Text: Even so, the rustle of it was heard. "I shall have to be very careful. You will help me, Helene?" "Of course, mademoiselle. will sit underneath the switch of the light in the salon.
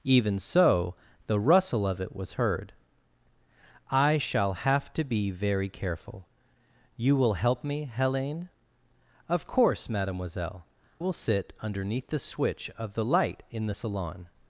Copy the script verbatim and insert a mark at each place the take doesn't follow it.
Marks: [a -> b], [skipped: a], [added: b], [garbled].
Even so, the rustle of it was heard. "I shall have to be very careful. You will help me, Helene?" "Of course, mademoiselle. will sit underneath the switch of the light in the salon.